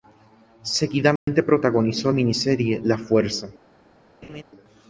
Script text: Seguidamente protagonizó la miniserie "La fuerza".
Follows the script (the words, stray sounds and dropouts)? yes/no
no